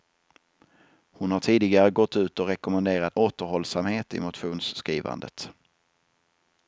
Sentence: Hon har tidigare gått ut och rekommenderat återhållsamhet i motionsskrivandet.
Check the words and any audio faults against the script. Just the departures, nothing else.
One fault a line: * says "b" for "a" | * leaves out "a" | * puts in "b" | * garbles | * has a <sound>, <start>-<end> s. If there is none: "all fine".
all fine